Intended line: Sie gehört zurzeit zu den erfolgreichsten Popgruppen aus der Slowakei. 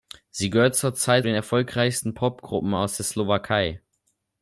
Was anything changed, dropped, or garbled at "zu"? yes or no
yes